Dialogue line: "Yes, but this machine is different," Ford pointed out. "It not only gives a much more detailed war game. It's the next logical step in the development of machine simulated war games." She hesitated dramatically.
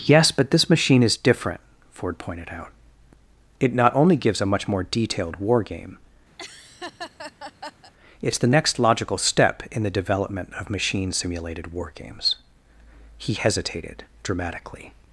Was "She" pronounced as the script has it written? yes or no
no